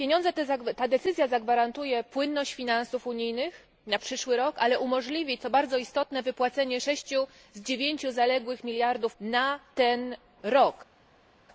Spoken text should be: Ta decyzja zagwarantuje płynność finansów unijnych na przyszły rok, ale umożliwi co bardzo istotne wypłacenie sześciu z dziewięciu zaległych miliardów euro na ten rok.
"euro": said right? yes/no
no